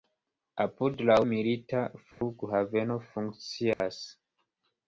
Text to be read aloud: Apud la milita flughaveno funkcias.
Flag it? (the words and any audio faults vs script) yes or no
yes